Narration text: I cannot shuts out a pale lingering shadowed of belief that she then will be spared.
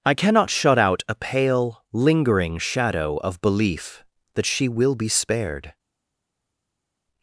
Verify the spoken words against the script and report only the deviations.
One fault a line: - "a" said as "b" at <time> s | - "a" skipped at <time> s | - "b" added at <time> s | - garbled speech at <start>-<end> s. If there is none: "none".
- "shuts" said as "shut" at 0.5 s
- "shadowed" said as "shadow" at 2.6 s
- "then" skipped at 4.7 s